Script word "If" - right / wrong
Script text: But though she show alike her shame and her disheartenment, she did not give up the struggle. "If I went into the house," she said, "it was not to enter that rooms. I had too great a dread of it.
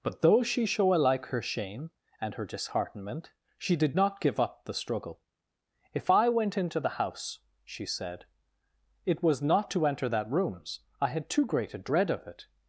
right